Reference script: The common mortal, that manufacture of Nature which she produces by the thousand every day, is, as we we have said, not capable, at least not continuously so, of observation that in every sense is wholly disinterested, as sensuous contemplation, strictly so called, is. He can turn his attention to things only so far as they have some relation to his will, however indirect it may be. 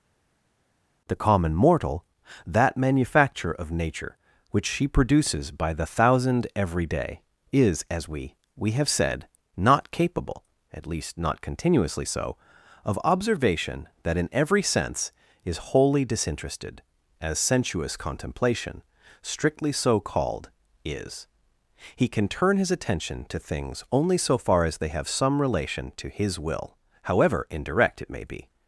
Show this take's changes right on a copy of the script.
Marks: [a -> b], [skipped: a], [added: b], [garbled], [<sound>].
The common mortal, that manufacture of Nature which she produces by the thousand every day, is, as we we have said, not capable, at least not continuously so, of observation that in every sense is wholly disinterested, as sensuous contemplation, strictly so called, is. He can turn his attention to things only so far as they have some relation to his will, however indirect it may be.